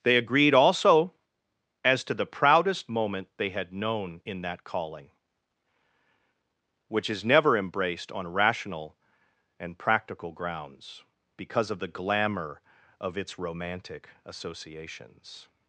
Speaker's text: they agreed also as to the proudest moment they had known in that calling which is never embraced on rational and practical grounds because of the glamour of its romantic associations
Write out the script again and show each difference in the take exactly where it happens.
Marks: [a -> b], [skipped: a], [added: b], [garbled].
they agreed also as to the proudest moment they had known in that calling which is never embraced on rational and practical grounds because of the glamour of its romantic associations